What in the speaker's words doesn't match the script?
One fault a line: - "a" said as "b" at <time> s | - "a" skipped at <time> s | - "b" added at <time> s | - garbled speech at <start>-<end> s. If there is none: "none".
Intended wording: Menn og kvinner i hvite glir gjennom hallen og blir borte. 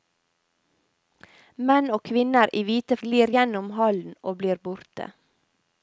none